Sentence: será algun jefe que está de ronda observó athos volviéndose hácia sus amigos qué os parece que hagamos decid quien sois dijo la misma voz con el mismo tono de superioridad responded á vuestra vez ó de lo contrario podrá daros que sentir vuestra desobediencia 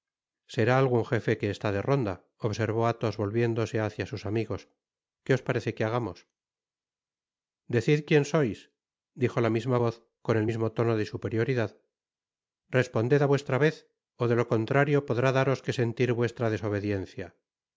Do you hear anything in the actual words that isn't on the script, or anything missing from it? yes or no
no